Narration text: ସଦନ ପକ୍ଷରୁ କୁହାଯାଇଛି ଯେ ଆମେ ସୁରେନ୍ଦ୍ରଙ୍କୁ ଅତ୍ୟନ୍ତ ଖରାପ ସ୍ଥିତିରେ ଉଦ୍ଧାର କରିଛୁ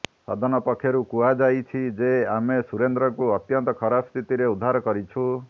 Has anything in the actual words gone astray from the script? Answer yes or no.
no